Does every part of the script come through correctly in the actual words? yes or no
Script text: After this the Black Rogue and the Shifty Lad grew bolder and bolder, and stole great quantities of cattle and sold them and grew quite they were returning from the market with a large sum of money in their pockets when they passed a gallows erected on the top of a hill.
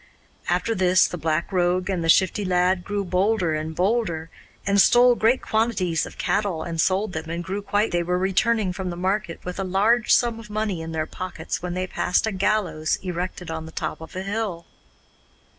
yes